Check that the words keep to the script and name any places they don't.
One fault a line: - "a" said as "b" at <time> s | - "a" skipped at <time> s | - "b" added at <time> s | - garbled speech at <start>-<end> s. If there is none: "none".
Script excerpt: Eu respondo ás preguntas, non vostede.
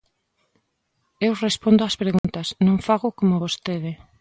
- "fago como" added at 2.9 s